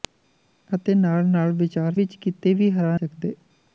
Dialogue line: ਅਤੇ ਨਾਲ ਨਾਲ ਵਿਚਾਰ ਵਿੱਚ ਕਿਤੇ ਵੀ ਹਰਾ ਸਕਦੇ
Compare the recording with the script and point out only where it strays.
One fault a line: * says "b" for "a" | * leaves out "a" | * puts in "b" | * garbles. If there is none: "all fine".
all fine